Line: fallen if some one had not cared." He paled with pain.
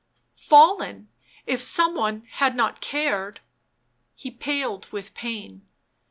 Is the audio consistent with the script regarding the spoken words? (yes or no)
yes